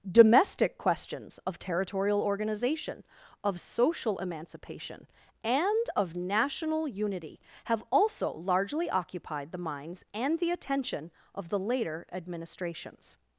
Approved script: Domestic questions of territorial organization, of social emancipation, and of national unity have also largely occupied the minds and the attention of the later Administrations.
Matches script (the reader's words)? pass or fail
pass